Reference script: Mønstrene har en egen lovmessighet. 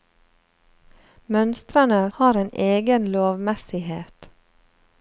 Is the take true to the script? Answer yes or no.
yes